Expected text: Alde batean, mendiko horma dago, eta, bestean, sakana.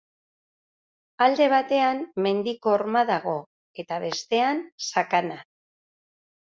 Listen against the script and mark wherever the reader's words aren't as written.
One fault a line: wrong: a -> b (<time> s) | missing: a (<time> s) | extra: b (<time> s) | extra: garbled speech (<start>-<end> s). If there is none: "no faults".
no faults